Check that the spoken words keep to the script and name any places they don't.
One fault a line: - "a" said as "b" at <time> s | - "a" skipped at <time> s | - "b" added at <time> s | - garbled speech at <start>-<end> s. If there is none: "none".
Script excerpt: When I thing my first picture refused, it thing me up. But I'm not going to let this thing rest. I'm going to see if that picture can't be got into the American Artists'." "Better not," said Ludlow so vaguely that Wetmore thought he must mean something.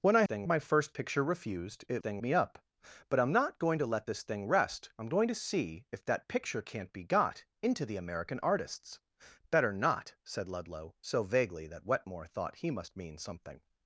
none